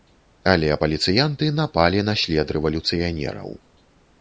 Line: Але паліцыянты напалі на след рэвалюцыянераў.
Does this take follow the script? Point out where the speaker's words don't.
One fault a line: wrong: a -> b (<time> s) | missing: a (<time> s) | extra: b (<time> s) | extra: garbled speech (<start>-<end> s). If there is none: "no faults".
no faults